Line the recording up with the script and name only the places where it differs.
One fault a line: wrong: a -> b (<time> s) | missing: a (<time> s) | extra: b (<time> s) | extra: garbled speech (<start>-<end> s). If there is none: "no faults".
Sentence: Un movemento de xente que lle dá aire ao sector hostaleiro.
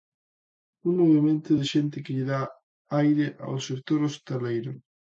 no faults